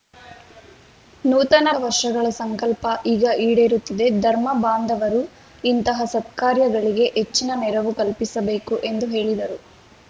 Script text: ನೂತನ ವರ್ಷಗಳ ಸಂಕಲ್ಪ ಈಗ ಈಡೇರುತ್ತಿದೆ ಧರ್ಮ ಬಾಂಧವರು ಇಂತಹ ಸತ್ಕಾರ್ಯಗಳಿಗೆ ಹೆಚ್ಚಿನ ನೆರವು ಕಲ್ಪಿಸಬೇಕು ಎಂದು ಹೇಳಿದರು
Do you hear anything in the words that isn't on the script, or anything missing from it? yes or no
no